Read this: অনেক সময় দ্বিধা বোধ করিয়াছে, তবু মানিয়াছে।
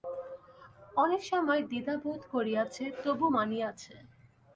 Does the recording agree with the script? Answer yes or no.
yes